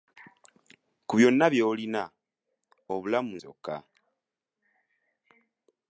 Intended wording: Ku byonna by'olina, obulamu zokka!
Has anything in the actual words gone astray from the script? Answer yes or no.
no